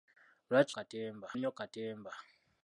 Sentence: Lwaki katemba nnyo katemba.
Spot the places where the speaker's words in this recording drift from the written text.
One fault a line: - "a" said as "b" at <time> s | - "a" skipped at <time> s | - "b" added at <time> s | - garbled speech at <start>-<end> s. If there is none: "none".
none